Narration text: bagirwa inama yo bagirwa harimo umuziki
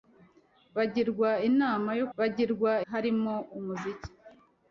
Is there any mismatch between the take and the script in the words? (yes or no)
no